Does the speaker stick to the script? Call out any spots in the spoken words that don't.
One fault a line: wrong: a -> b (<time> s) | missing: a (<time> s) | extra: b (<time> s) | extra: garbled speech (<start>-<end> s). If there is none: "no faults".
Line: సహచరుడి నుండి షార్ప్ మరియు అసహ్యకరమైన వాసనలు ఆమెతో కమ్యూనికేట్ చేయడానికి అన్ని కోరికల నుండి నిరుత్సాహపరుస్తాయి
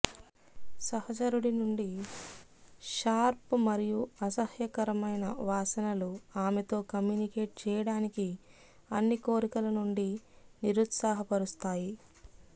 no faults